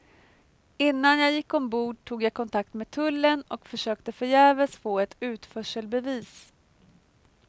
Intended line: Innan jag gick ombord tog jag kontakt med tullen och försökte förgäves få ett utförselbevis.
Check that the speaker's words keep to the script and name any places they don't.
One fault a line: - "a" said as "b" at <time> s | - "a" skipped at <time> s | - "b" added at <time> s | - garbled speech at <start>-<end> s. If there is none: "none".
none